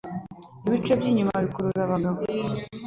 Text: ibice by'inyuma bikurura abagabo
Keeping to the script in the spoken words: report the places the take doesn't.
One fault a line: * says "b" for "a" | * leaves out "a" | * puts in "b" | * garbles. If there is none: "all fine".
all fine